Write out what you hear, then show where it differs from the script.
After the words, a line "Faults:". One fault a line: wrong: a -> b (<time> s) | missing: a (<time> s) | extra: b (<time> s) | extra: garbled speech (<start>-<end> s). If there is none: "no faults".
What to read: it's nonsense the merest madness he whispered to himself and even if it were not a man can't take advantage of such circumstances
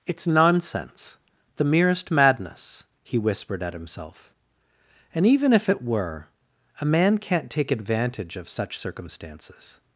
it's nonsense the merest madness he whispered at himself and even if it were a man can't take advantage of such circumstances
Faults:
wrong: to -> at (3.6 s)
missing: not (6.3 s)